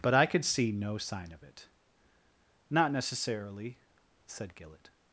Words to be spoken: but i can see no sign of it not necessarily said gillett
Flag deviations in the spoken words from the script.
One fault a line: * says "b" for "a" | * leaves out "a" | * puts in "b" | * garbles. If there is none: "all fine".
* says "could" for "can"